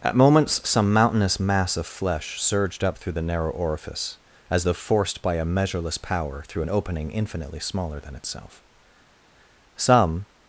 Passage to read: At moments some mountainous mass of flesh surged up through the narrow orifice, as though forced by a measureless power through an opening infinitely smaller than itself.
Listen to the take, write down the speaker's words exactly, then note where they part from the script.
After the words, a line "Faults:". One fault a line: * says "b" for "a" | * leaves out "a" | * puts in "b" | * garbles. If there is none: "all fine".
At moments some mountainous mass of flesh surged up through the narrow orifice, as though forced by a measureless power through an opening infinitely smaller than itself. Some
Faults:
* puts in "Some"